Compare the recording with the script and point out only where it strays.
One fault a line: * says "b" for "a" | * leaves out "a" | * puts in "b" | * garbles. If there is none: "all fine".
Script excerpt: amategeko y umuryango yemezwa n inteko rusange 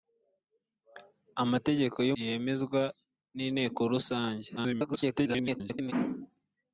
* leaves out "umuryango"
* garbles